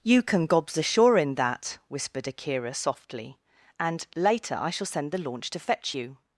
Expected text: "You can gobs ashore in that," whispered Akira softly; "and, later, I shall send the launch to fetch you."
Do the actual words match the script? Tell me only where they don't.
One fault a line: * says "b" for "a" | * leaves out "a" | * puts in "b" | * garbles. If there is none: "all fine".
all fine